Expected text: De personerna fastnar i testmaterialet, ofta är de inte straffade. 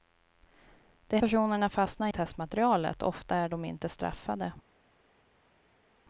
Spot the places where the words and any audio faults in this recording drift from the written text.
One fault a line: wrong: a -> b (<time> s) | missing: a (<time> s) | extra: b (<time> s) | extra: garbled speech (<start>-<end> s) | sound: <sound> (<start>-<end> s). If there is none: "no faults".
no faults